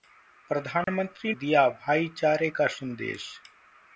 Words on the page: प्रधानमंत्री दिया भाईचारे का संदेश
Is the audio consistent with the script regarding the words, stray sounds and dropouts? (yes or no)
no